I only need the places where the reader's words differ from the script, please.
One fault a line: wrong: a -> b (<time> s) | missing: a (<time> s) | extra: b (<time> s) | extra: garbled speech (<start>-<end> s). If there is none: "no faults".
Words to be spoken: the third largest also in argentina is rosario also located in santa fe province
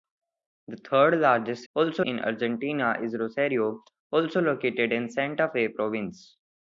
no faults